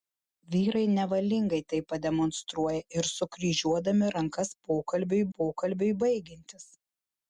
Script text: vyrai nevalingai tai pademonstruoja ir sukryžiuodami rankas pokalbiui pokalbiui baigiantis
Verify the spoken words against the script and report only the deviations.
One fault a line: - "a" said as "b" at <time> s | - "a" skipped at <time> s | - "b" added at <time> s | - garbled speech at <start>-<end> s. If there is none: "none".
none